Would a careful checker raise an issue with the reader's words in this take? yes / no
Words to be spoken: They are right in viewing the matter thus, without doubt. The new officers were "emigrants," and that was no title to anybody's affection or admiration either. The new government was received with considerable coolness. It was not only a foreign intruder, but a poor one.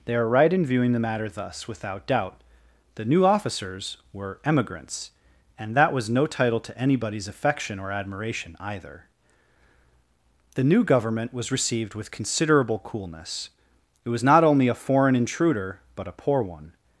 no